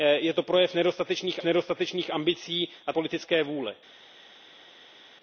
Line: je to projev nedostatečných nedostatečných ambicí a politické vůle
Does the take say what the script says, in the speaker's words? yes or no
yes